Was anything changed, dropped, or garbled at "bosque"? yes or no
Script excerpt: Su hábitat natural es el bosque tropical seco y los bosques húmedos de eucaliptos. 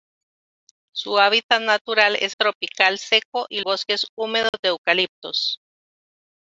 yes